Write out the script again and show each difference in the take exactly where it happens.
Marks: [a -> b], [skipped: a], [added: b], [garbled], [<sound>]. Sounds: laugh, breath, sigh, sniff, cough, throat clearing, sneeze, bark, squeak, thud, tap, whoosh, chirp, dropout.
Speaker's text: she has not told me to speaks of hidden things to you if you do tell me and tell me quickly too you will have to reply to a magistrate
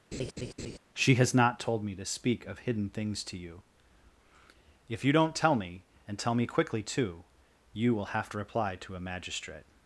[laugh] she has not told me to [speaks -> speak] of hidden things to you if you [do -> don't] tell me and tell me quickly too you will have to reply to a magistrate